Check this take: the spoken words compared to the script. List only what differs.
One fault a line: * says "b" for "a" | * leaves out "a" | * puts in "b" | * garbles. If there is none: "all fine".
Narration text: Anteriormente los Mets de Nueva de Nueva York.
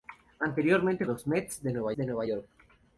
all fine